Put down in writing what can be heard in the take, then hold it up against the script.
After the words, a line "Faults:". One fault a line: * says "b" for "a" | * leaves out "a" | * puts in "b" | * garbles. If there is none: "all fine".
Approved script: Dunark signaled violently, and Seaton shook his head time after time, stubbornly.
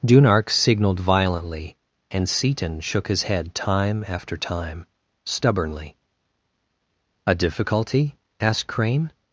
Dunark signaled violently, and Seaton shook his head time after time, stubbornly. "A difficulty?" asked Crane
Faults:
* puts in "A difficulty asked Crane"